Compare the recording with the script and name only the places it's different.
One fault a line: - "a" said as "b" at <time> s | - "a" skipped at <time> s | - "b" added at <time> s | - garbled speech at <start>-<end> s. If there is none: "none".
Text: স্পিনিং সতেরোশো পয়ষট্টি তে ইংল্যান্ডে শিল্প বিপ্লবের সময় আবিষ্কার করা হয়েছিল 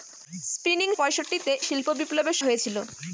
- "সতেরোশো" skipped at 0.9 s
- "ইংল্যান্ডে" skipped at 1.5 s
- "সময় আবিষ্কার করা" skipped at 2.4 s